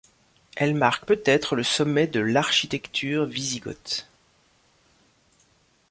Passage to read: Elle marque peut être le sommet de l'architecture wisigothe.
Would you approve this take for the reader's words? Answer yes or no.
yes